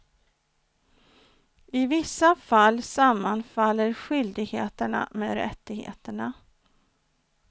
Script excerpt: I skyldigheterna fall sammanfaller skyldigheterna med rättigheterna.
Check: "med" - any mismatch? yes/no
no